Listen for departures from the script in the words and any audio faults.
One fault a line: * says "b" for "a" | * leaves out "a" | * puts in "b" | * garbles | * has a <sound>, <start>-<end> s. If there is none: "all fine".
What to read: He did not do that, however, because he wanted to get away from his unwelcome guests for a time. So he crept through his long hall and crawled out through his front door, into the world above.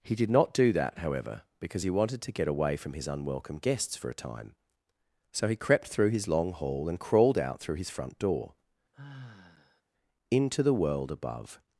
* has a sigh, 8.9-9.8 s